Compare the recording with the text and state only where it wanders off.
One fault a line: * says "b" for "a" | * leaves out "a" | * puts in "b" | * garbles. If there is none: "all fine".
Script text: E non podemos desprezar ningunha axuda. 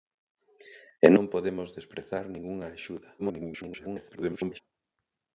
* garbles